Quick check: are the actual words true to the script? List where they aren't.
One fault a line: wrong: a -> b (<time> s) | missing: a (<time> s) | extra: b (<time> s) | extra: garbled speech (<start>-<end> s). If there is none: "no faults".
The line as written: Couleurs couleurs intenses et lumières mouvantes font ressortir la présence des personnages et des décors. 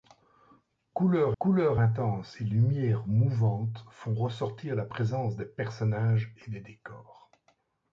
no faults